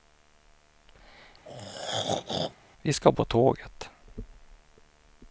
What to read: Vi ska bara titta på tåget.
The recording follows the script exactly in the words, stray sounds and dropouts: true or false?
false